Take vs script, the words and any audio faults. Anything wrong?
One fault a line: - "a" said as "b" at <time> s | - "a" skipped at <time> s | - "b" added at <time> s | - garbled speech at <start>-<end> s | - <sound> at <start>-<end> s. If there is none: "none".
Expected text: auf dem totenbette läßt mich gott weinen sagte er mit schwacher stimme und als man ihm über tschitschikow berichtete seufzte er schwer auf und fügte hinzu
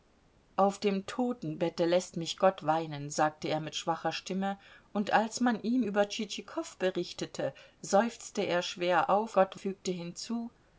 - "und" said as "gott" at 9.3 s